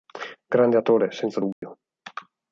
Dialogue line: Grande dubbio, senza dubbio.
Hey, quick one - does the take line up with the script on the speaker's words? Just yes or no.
no